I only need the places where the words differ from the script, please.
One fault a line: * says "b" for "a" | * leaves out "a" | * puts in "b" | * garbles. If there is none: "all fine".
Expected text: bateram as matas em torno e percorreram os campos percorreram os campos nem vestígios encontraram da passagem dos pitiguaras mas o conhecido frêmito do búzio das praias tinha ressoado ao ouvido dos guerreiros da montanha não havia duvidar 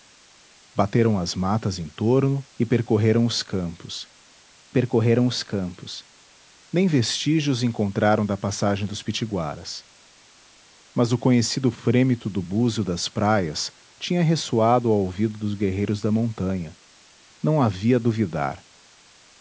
all fine